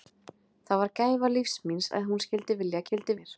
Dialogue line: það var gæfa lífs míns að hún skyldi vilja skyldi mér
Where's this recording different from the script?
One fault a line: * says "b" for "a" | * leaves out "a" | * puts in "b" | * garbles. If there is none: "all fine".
all fine